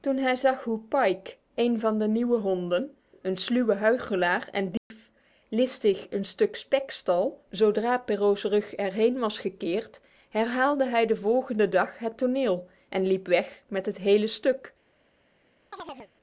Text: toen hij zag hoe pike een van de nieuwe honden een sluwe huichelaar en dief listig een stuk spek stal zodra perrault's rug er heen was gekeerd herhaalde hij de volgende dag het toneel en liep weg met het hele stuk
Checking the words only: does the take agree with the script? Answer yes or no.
yes